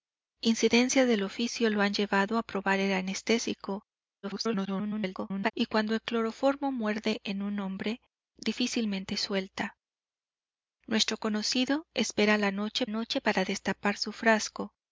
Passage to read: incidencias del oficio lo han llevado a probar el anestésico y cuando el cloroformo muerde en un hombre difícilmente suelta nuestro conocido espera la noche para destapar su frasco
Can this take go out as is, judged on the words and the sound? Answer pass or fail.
fail